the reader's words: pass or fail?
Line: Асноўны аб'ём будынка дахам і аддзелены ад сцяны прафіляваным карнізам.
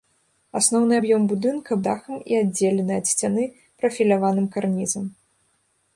pass